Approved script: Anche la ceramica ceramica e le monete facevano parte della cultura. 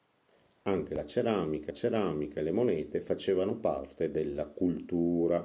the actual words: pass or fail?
pass